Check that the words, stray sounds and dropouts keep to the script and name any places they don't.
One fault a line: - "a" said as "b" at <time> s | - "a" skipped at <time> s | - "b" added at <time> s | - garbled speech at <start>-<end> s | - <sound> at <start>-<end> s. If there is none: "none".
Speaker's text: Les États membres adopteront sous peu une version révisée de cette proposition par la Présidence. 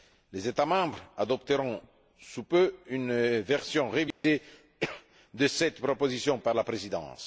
- dropout at 4.1-4.2 s